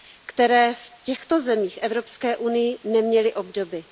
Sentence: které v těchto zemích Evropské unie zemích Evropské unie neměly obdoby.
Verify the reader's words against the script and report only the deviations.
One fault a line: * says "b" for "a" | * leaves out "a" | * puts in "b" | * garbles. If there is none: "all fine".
* leaves out "zemích Evropské unie"